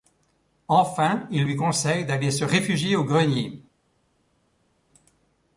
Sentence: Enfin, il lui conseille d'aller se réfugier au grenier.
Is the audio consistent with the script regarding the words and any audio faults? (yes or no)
yes